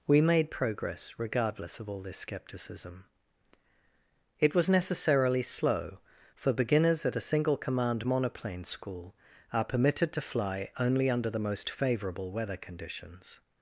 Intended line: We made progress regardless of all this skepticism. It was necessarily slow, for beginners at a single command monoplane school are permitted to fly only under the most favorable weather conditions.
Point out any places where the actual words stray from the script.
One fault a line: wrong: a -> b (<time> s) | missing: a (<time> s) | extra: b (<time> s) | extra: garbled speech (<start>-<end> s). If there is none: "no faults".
no faults